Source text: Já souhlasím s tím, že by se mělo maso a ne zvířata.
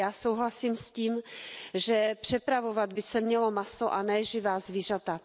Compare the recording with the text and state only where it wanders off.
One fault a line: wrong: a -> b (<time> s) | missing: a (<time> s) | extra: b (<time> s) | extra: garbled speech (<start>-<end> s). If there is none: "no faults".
extra: přepravovat (2.2 s)
extra: živá (4.2 s)